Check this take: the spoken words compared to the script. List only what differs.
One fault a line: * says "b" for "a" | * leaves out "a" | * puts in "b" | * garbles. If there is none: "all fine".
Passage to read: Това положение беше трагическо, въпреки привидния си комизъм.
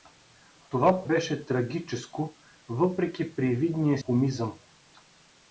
* leaves out "положение"
* leaves out "си"